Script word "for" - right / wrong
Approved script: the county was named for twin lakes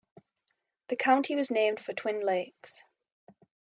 right